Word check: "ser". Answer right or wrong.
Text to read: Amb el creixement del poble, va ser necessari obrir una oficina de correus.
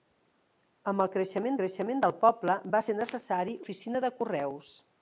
right